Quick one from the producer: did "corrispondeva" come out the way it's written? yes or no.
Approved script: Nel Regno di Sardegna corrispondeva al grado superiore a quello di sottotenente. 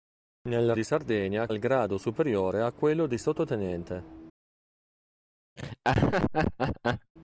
no